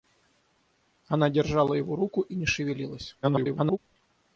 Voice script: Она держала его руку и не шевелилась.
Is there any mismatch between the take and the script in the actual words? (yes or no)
yes